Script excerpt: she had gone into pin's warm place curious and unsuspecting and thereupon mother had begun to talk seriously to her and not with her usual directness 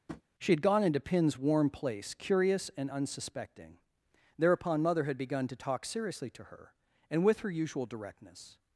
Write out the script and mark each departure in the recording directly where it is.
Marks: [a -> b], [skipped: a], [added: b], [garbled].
she had gone into pin's warm place curious and unsuspecting [skipped: and] thereupon mother had begun to talk seriously to her and [skipped: not] with her usual directness